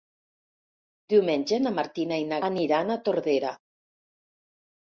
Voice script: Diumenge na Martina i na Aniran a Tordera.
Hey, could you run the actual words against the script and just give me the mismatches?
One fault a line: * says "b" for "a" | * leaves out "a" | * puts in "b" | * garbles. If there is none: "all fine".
all fine